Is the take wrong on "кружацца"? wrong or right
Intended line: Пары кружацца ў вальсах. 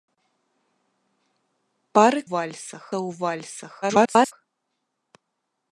wrong